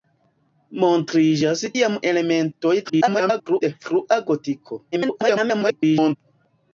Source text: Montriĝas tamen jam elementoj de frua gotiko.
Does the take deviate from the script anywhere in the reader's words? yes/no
yes